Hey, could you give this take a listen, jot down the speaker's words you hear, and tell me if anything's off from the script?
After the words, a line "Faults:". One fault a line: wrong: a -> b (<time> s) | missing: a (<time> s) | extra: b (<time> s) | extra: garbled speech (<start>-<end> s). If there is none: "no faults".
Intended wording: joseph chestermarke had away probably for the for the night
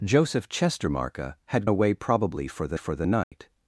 joseph chestermarke had away probably for the for the night
Faults:
no faults